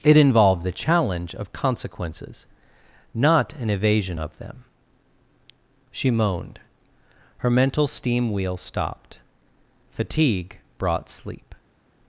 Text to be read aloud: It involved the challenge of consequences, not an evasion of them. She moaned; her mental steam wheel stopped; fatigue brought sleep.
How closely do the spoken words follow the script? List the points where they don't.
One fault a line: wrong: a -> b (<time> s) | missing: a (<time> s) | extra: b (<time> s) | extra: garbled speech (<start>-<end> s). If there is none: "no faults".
no faults